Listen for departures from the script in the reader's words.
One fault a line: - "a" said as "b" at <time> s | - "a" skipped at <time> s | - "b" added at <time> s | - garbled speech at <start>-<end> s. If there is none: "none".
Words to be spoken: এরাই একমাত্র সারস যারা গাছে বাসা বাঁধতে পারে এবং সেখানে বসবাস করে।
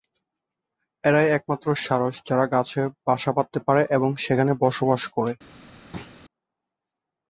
none